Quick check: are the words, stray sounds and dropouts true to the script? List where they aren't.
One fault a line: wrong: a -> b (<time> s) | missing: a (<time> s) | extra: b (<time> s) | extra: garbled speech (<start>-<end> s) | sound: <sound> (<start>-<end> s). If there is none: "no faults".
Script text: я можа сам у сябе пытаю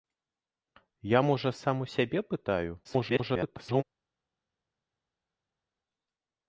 extra: garbled speech (2.8-3.8 s)